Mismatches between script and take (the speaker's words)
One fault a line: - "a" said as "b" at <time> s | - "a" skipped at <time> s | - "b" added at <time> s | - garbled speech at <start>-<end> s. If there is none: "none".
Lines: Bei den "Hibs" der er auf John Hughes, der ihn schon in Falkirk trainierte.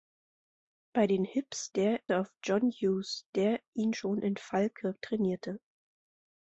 none